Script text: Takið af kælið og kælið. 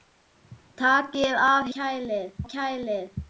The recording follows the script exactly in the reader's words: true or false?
true